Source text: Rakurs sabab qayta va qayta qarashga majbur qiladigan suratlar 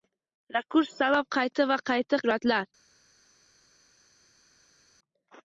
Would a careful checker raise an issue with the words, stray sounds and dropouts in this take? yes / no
yes